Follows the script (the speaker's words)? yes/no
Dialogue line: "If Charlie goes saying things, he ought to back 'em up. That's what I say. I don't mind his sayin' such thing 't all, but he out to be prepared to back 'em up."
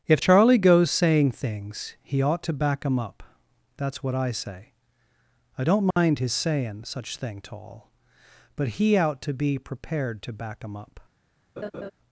yes